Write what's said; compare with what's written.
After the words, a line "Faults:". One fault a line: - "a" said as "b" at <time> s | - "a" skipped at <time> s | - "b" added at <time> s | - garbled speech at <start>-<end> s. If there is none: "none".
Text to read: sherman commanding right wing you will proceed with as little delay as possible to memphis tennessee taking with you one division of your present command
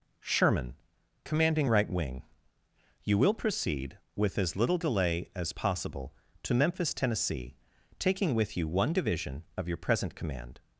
sherman commanding right wing you will proceed with as little delay as possible to memphis tennessee taking with you one division of your present command
Faults:
none